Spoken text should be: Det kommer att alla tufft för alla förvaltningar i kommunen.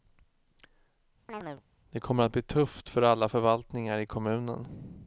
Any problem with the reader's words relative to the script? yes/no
yes